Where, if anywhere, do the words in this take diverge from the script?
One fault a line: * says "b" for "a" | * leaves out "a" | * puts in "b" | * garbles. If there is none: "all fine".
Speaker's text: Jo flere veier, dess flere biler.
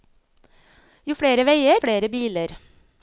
* leaves out "dess"